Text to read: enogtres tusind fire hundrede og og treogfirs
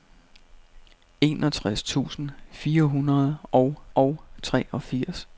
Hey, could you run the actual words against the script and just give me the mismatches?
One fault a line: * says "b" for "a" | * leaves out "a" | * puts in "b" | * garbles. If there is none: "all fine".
all fine